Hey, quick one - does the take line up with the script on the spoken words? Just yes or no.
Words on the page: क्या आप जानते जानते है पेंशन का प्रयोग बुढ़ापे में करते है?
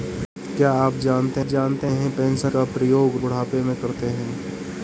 yes